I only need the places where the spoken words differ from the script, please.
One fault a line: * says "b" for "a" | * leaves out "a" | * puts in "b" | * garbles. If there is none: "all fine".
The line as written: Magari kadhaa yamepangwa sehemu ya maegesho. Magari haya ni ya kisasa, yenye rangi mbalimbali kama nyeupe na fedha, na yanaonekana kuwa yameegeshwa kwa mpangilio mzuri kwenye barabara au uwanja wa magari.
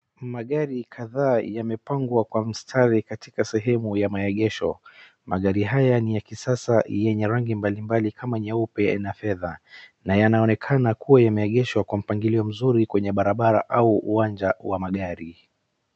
* puts in "kwa mstari katika"